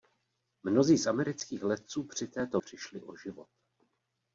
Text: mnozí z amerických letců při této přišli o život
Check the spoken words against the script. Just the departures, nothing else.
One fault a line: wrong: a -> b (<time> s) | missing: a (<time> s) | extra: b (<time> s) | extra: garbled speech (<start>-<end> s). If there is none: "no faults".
no faults